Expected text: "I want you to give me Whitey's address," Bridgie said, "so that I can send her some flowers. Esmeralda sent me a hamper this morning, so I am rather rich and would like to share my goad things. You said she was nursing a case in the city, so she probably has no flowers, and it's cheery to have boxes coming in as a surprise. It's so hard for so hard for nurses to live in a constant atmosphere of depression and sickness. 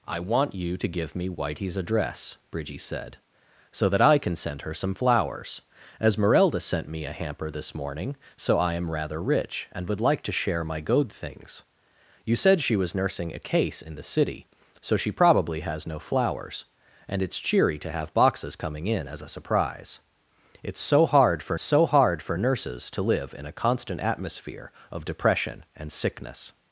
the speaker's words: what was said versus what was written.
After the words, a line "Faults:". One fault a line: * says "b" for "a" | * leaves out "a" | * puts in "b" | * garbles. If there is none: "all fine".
"I want you to give me Whitey's address," Bridgie said, "so that I can send her some flowers. Esmeralda sent me a hamper this morning, so I am rather rich and would like to share my goad things. You said she was nursing a case in the city, so she probably has no flowers, and it's cheery to have boxes coming in as a surprise. It's so hard for so hard for nurses to live in a constant atmosphere of depression and sickness.
Faults:
all fine